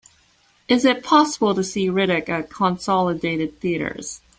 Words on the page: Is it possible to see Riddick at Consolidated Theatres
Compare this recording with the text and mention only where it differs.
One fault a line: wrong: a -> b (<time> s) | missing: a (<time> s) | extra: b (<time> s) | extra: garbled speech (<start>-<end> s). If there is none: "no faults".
no faults